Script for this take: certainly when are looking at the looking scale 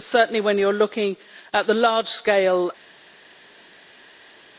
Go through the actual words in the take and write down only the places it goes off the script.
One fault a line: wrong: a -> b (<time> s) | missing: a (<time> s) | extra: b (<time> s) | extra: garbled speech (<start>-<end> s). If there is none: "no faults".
extra: you (0.6 s)
wrong: looking -> large (1.7 s)